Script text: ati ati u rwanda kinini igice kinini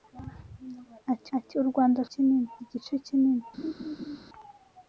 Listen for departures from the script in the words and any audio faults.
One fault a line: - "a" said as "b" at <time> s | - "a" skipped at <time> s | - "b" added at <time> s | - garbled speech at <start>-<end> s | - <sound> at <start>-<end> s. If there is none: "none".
- laugh at 3.6-4.2 s